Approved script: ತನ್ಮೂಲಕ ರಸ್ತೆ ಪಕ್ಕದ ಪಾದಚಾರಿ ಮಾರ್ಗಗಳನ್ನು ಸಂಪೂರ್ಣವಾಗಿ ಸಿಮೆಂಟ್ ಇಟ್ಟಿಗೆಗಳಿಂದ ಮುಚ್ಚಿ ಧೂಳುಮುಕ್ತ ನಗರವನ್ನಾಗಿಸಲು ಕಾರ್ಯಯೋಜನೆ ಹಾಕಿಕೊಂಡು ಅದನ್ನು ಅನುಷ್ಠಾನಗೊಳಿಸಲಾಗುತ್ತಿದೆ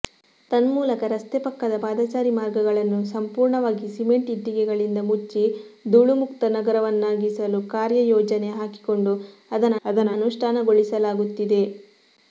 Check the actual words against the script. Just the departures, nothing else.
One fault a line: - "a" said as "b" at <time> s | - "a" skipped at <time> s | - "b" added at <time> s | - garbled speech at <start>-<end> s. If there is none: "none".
- "ಅದನ್ನು" added at 9.8 s